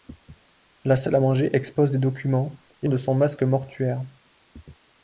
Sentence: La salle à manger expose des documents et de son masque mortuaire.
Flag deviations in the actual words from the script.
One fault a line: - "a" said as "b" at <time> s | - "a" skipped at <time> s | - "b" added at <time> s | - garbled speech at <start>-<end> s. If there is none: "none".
none